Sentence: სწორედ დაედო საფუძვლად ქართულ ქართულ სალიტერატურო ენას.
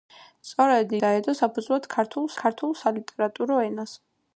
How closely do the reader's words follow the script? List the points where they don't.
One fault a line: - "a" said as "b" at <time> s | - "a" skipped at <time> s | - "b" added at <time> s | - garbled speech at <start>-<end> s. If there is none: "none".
none